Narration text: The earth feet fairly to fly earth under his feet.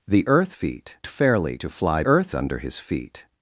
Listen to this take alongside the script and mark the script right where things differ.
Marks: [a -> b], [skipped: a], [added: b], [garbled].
The earth feet fairly to fly earth under his feet.